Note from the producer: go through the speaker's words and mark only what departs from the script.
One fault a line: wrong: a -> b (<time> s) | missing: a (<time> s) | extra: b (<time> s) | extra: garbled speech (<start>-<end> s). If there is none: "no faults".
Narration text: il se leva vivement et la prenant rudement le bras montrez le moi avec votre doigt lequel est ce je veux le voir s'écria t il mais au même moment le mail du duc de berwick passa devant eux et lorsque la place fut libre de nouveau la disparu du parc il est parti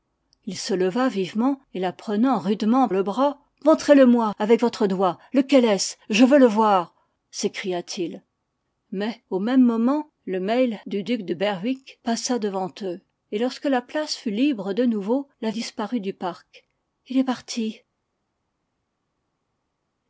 no faults